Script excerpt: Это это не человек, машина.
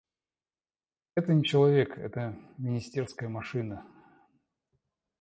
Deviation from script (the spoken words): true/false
true